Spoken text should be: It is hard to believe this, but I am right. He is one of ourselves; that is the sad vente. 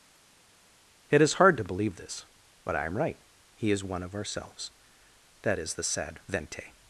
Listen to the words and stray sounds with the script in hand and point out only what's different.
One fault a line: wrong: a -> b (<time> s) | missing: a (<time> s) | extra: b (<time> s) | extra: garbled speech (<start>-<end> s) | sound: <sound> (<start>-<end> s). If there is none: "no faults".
no faults